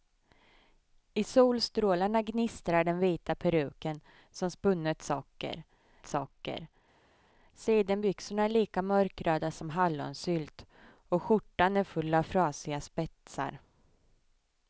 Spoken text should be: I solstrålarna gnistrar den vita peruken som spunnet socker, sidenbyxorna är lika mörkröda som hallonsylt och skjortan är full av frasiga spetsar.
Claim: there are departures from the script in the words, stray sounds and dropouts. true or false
true